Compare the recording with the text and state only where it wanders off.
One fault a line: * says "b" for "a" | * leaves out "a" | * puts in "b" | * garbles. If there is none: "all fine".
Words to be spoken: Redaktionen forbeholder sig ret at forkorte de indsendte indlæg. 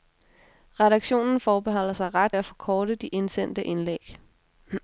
all fine